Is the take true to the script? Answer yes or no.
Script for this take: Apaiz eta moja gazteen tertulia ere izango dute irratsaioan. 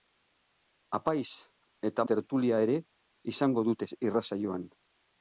no